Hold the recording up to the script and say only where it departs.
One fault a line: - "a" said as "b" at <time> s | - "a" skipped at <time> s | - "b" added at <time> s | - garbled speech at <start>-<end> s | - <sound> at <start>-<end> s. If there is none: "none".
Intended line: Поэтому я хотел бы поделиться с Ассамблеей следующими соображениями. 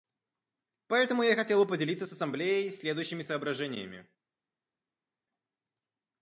none